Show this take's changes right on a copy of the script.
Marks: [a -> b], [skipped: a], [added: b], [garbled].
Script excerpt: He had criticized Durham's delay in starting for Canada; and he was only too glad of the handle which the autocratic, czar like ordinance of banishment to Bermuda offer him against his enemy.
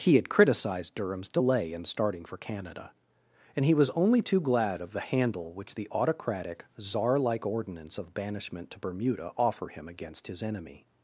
He had criticized Durham's delay in starting for Canada; and he was only too glad of the handle which the autocratic, czar like ordinance of banishment to Bermuda offer him against his enemy.